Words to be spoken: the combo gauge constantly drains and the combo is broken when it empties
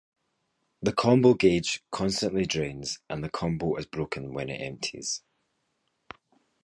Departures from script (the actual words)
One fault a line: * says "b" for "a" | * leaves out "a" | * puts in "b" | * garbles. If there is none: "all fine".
all fine